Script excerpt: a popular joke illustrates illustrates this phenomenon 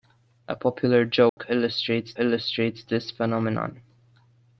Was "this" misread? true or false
false